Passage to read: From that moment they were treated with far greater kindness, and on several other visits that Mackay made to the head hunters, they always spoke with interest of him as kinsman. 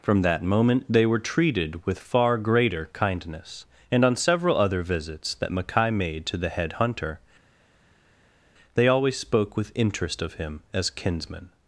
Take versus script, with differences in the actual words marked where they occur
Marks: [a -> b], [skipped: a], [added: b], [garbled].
From that moment they were treated with far greater kindness, and on several other visits that Mackay made to the head [hunters, -> hunter] they always spoke with interest of him as kinsman.